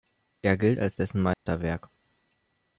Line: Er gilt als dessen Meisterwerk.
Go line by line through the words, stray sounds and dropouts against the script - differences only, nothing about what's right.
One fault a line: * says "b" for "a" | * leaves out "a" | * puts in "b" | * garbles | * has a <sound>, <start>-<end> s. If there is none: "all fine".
* has a dropout, 1.3-1.5 s